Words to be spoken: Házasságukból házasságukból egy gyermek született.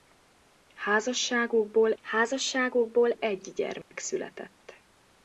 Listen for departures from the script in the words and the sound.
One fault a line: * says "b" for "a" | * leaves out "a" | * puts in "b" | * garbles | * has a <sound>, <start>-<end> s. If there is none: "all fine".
* has a dropout, 3.8-3.9 s